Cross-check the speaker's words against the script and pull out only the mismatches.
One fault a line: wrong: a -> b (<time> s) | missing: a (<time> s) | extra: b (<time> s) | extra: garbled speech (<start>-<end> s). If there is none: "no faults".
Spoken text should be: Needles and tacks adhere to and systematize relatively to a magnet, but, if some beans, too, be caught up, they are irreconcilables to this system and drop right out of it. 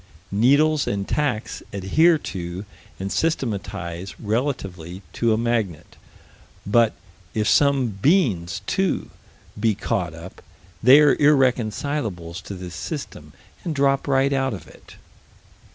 no faults